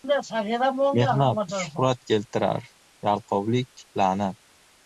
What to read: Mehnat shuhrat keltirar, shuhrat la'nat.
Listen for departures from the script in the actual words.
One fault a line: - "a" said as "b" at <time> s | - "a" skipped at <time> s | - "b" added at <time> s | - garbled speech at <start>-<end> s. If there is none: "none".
- "shuhrat" said as "yalqovlik" at 3.1 s